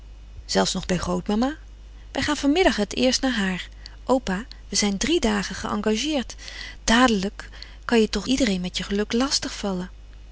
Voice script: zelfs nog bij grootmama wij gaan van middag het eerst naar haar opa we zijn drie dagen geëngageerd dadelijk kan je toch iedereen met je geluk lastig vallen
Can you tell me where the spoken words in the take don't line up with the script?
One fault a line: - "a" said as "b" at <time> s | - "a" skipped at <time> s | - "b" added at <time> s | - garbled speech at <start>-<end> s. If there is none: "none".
none